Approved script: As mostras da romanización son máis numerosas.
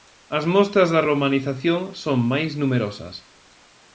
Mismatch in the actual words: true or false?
false